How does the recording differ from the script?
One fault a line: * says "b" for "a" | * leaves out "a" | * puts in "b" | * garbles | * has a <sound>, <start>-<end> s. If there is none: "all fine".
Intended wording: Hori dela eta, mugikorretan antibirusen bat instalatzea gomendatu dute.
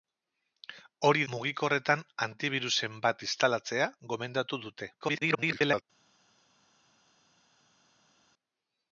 * leaves out "dela eta"
* garbles